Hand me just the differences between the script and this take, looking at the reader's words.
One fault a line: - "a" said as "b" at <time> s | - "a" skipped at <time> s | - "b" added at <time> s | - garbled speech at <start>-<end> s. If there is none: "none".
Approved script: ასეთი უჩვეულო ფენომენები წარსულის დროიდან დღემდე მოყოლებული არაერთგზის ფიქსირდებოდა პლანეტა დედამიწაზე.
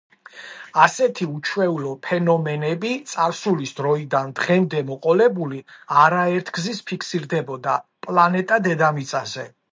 none